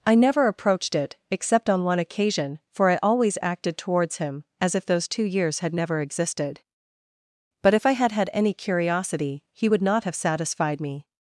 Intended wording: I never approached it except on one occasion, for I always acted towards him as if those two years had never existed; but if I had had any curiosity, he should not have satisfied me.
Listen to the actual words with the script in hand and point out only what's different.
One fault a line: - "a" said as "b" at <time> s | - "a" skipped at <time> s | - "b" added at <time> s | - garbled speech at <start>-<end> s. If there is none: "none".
- "should" said as "would" at 9.7 s